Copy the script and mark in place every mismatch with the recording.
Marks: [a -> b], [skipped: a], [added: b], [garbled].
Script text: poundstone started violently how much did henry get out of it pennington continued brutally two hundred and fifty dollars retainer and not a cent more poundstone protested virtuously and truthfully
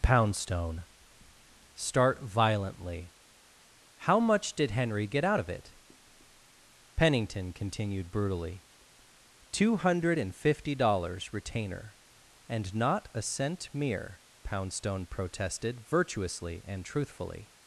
poundstone [started -> start] violently how much did henry get out of it pennington continued brutally two hundred and fifty dollars retainer and not a cent [more -> mere] poundstone protested virtuously and truthfully